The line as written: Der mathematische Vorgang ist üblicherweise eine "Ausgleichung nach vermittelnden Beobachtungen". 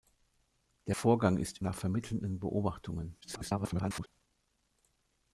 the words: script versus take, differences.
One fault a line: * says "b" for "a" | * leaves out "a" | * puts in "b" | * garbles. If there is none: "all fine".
* leaves out "mathematische"
* leaves out "üblicherweise eine Ausgleichung"
* garbles